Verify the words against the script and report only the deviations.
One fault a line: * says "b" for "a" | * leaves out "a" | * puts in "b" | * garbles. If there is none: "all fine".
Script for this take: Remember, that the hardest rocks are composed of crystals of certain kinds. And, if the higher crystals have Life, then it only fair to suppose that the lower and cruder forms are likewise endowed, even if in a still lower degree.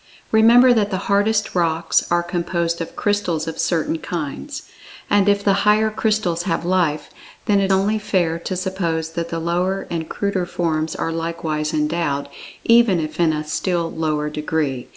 all fine